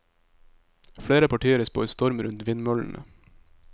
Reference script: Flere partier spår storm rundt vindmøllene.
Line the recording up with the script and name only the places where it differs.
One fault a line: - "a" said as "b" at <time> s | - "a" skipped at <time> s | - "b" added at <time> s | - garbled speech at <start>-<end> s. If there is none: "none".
none